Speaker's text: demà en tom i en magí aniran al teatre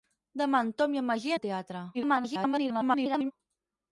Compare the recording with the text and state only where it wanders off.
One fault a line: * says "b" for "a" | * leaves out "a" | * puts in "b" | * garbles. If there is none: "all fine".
* leaves out "aniran"
* garbles